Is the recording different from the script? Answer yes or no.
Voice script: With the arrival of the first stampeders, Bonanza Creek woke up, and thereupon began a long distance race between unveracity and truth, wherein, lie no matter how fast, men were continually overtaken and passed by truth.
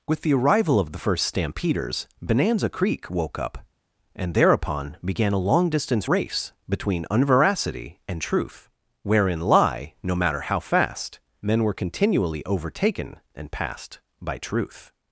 no